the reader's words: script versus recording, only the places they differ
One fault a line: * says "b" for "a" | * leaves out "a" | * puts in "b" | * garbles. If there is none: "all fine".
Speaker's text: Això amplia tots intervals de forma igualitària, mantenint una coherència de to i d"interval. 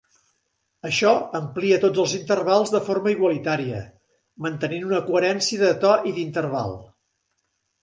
* puts in "els"